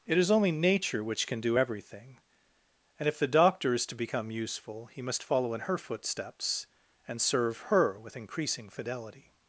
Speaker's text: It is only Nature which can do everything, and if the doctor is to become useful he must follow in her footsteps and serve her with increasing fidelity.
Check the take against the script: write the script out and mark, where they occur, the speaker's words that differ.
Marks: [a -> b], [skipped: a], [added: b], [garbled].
It is only Nature which can do everything, and if the doctor is to become useful he must follow in her footsteps and serve her with increasing fidelity.